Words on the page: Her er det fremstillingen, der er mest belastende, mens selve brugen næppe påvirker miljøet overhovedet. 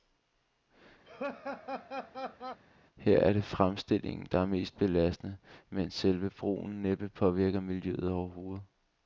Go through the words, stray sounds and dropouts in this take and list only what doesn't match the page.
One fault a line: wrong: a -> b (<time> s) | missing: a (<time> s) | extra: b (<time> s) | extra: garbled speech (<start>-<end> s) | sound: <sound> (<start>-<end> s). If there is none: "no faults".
sound: laugh (1.1-2.6 s)